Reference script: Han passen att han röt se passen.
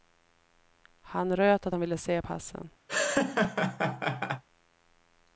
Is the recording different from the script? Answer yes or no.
yes